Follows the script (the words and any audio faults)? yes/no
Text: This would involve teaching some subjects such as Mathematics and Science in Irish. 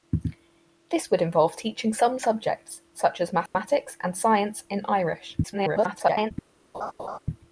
no